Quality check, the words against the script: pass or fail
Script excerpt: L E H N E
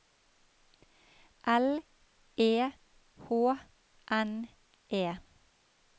pass